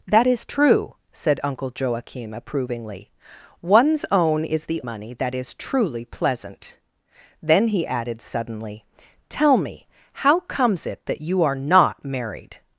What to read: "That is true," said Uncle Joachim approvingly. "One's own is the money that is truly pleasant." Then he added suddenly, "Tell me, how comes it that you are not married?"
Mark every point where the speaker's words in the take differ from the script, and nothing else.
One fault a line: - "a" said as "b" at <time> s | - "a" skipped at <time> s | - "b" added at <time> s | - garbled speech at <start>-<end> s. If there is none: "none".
none